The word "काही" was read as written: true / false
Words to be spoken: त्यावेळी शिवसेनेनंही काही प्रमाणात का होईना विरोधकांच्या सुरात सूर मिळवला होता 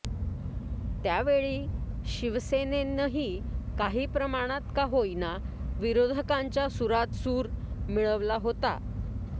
true